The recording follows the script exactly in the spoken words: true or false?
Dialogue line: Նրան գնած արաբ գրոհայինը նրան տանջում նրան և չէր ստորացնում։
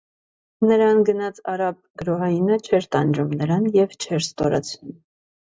false